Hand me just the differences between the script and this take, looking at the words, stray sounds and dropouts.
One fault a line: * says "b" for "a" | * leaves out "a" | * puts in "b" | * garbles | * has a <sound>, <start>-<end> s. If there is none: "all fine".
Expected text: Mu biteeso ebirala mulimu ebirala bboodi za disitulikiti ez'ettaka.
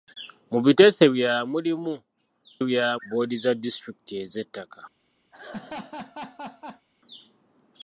* has a laugh, 5.3-6.9 s